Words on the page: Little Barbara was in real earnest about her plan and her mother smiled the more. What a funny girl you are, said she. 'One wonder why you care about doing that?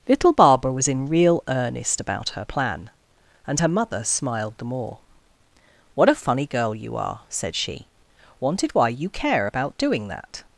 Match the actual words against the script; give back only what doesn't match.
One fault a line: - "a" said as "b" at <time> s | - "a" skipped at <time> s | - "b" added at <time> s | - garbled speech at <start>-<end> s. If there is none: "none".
- "One wonder" said as "Wanted" at 8.4 s